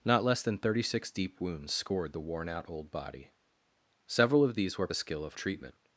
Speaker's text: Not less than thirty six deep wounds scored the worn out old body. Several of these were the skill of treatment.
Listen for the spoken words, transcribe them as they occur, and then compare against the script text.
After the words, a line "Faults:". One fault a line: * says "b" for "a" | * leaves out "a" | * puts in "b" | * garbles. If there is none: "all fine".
Not less than thirty six deep wounds scored the worn out old body. Several of these were the skill of treatment.
Faults:
all fine